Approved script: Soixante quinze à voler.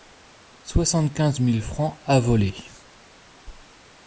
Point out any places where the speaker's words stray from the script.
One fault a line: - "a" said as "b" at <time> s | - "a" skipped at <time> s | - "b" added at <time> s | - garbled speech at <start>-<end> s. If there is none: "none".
- "mille francs" added at 1.4 s